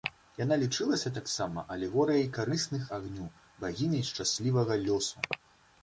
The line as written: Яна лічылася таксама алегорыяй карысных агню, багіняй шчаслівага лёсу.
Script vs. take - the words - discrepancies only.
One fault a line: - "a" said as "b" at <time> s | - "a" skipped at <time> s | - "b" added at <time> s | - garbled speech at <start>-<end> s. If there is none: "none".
none